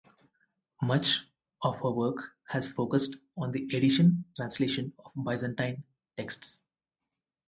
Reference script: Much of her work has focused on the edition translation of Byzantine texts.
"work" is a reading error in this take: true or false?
false